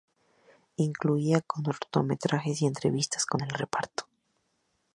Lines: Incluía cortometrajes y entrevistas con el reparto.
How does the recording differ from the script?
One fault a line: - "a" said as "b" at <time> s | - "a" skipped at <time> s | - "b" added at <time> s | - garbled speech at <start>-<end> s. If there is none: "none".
none